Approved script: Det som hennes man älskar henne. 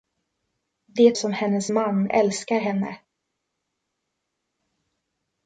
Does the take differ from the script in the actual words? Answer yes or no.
no